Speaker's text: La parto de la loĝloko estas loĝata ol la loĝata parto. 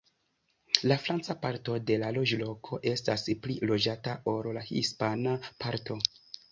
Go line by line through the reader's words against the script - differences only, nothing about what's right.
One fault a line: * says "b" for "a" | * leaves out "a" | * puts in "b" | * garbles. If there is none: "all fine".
* puts in "franca"
* puts in "pli"
* says "hispana" for "loĝata"